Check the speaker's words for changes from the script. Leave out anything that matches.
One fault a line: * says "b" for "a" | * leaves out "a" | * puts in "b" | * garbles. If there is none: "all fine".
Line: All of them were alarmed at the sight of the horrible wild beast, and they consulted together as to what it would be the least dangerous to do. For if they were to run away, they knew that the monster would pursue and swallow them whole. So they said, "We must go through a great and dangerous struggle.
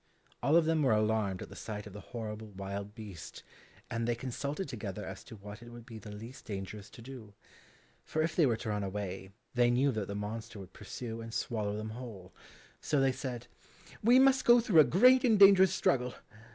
all fine